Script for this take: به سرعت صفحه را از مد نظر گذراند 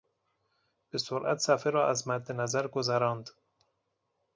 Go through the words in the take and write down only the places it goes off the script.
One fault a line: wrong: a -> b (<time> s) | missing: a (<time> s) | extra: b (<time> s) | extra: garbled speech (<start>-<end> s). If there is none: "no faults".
no faults